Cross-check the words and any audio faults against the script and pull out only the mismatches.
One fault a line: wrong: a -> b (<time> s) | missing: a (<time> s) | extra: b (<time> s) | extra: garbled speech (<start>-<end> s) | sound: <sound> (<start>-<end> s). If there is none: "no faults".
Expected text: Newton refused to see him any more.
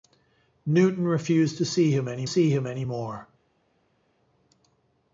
extra: see him any (2.2 s)